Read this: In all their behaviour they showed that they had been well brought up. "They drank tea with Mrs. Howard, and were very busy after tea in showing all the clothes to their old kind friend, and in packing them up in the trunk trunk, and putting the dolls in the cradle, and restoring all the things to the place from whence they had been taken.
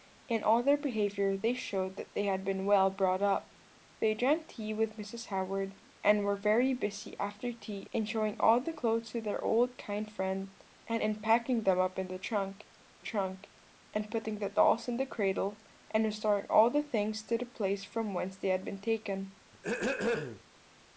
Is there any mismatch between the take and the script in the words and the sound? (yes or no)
yes